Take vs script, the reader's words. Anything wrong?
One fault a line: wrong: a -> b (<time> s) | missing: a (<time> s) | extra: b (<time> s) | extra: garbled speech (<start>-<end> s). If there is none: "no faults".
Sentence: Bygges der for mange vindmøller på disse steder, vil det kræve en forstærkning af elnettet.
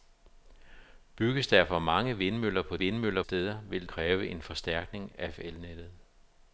wrong: disse -> vindmøller (2.8 s)
missing: det (3.9 s)